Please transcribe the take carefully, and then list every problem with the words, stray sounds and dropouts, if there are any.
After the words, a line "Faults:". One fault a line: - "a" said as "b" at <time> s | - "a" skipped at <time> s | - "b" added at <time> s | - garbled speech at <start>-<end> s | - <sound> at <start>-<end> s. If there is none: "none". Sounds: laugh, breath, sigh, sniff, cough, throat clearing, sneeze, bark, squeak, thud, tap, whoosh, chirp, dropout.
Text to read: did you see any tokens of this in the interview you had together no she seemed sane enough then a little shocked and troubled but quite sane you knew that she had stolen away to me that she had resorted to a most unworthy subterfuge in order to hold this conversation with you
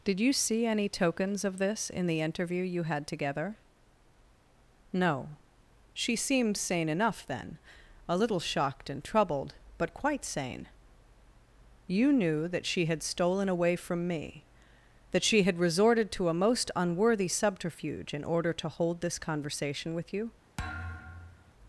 did you see any tokens of this in the interview you had together no she seemed sane enough then a little shocked and troubled but quite sane you knew that she had stolen away from me that she had resorted to a most unworthy subterfuge in order to hold this conversation with you
Faults:
- "to" said as "from" at 13.8 s
- thud at 20.6-21.5 s